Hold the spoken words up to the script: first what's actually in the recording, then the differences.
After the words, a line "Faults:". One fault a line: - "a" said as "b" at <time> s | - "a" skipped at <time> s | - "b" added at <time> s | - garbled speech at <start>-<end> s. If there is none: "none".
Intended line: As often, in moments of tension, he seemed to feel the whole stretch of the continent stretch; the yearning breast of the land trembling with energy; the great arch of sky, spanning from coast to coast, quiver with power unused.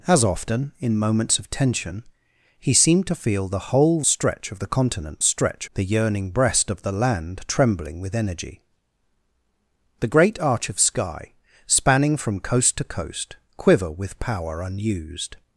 As often, in moments of tension, he seemed to feel the whole stretch of the continent stretch; the yearning breast of the land trembling with energy; the great arch of sky, spanning from coast to coast, quiver with power unused.
Faults:
none